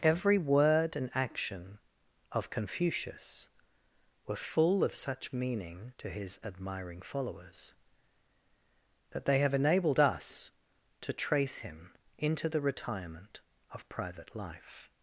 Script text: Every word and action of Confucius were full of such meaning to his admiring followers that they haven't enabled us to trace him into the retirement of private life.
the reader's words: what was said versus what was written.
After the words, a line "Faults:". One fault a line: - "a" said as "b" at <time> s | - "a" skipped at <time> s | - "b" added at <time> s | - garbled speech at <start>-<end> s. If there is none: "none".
Every word and action of Confucius were full of such meaning to his admiring followers that they have enabled us to trace him into the retirement of private life.
Faults:
- "haven't" said as "have" at 9.4 s